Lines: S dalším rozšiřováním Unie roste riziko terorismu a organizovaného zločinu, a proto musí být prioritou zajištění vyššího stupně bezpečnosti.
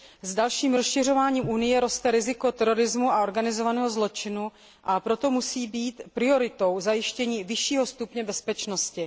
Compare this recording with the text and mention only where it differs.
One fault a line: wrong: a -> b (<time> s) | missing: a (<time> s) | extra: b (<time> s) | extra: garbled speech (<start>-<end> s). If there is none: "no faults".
no faults